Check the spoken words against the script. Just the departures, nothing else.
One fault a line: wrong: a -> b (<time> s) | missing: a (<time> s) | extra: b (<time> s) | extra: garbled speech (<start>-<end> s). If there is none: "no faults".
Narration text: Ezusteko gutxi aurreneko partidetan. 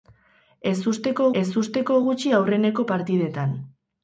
extra: ezusteko (1.4 s)